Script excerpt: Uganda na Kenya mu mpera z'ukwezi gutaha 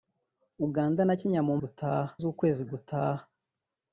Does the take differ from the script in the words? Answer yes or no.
yes